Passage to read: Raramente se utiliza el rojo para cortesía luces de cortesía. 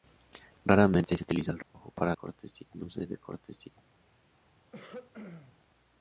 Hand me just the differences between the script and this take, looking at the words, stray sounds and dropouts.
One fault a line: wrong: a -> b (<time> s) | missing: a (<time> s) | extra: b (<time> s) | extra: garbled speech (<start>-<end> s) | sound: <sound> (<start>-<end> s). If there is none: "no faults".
sound: dropout (1.6-1.7 s)
sound: throat clearing (4.7-5.6 s)